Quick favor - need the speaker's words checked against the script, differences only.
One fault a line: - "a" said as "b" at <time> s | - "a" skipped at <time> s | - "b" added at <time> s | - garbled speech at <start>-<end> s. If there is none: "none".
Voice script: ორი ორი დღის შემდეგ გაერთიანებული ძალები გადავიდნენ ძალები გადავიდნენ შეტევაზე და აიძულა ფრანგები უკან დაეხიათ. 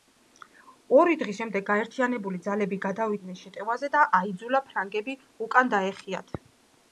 - "ორი" skipped at 1.2 s
- "ძალები გადავიდნენ" skipped at 3.4 s